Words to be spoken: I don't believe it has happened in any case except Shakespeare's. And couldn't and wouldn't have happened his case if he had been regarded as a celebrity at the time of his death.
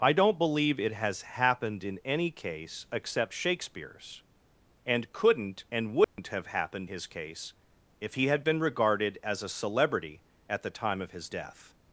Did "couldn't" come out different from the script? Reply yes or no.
no